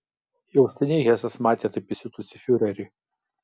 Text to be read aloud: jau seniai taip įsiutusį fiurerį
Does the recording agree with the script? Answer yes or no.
no